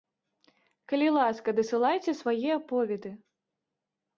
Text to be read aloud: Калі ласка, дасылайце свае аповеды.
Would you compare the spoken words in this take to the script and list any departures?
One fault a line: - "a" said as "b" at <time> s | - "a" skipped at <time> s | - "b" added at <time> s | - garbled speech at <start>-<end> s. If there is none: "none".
none